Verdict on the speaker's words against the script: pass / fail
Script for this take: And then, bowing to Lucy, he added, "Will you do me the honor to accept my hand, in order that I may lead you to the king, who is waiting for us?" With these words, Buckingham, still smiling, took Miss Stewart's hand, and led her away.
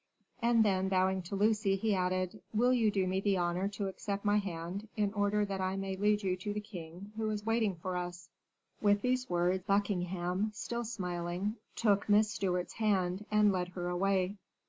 pass